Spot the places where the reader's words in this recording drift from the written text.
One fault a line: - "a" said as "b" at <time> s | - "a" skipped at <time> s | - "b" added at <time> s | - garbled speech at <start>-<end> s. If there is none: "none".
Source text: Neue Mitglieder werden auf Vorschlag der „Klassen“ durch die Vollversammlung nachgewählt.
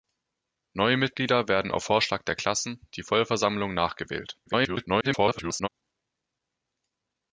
- "durch" skipped at 2.9 s
- garbled speech at 4.5-5.7 s